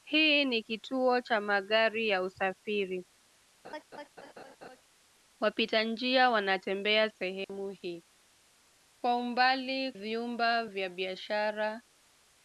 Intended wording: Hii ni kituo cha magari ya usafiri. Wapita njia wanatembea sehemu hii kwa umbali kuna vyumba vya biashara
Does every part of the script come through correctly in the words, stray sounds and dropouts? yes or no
no